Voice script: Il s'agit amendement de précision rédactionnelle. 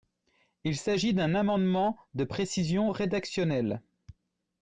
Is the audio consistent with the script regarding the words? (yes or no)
no